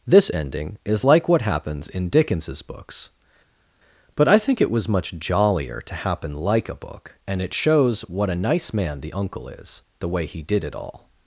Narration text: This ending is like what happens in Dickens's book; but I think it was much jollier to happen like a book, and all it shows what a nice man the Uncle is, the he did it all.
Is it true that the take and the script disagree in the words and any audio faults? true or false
true